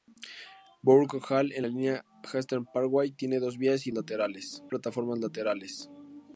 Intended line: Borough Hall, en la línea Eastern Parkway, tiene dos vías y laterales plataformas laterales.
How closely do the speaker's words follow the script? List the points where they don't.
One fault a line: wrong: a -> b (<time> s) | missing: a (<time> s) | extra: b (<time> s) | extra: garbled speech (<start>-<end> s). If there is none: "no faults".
no faults